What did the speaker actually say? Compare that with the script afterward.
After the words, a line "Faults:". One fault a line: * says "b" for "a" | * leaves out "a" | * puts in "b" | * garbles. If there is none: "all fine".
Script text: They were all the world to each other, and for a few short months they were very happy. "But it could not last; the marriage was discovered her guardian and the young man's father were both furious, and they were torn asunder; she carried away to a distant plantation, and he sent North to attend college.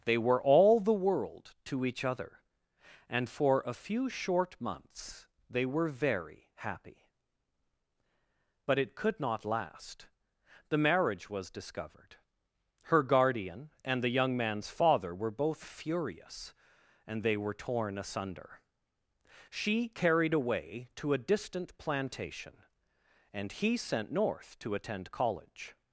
They were all the world to each other, and for a few short months they were very happy. "But it could not last; the marriage was discovered her guardian and the young man's father were both furious, and they were torn asunder; she carried away to a distant plantation, and he sent North to attend college.
Faults:
all fine